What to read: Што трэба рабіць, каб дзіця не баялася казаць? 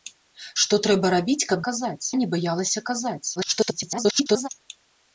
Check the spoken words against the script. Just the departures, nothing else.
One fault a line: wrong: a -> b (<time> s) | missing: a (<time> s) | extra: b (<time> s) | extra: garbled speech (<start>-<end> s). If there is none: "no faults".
wrong: дзіця -> казаць (1.7 s)
extra: garbled speech (3.4-4.5 s)